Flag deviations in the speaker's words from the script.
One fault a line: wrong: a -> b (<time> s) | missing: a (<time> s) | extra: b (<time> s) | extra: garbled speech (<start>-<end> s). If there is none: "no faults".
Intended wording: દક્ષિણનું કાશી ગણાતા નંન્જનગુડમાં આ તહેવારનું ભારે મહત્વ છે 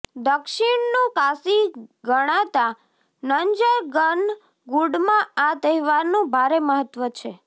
no faults